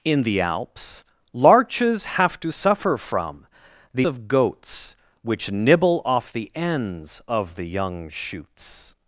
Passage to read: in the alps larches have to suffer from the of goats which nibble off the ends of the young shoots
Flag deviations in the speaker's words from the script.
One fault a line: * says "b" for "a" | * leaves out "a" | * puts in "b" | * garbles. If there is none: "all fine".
all fine